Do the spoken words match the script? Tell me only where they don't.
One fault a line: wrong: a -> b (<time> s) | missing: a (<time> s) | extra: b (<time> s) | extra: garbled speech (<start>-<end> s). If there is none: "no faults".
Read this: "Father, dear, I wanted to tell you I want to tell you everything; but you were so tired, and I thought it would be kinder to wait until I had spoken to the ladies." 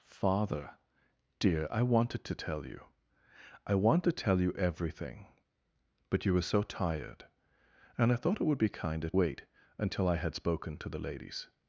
missing: to (9.1 s)